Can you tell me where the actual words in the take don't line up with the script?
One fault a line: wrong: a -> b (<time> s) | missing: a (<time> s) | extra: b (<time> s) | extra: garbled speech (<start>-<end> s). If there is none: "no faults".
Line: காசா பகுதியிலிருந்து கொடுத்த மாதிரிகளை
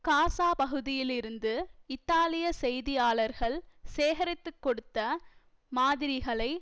extra: இத்தாலிய செய்தியாளர்கள் சேகரித்து (1.9 s)